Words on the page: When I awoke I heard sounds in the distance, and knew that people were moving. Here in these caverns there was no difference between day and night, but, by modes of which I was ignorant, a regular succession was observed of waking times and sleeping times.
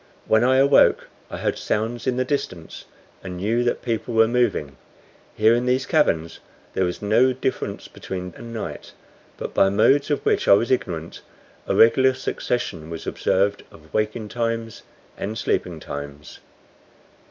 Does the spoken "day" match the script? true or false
false